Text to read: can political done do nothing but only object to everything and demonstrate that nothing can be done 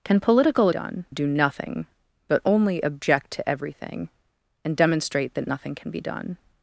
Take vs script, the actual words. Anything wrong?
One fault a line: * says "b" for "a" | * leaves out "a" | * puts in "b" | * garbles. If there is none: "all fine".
all fine